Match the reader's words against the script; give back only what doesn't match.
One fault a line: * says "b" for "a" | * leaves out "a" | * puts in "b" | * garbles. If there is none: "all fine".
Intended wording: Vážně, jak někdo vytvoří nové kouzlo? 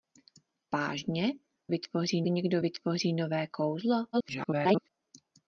* says "vytvoří" for "jak"
* garbles